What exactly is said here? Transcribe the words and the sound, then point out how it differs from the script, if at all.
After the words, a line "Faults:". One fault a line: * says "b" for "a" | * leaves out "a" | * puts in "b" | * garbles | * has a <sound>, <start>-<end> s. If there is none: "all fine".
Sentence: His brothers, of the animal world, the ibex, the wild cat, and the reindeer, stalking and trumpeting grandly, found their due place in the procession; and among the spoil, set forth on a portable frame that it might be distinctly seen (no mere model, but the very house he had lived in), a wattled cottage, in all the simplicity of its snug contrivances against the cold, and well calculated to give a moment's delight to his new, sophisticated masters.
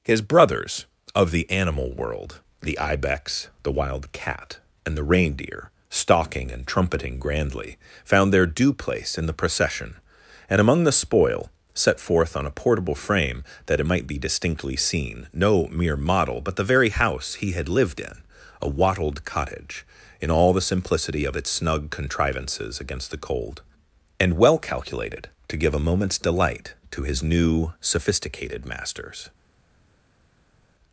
His brothers, of the animal world, the ibex, the wild cat, and the reindeer, stalking and trumpeting grandly, found their due place in the procession; and among the spoil, set forth on a portable frame that it might be distinctly seen (no mere model, but the very house he had lived in), a wattled cottage, in all the simplicity of its snug contrivances against the cold, and well calculated to give a moment's delight to his new, sophisticated masters.
Faults:
all fine